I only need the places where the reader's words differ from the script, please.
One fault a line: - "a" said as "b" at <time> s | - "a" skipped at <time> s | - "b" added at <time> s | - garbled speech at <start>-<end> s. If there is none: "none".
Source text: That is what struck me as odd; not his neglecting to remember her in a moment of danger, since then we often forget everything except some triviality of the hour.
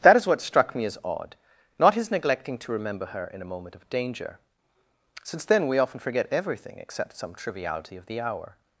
none